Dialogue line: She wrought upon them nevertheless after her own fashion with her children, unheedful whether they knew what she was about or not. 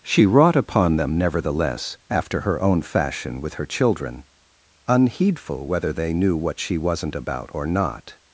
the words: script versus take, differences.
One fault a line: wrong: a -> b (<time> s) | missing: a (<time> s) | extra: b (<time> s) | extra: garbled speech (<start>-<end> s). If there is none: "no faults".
wrong: was -> wasn't (6.8 s)